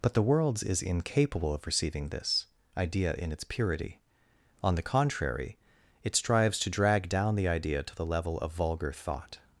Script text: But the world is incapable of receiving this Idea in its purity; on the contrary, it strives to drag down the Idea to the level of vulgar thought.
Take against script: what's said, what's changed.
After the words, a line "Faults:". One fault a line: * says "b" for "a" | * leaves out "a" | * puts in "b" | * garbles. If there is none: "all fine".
But the worlds is incapable of receiving this Idea in its purity; on the contrary, it strives to drag down the Idea to the level of vulgar thought.
Faults:
* says "worlds" for "world"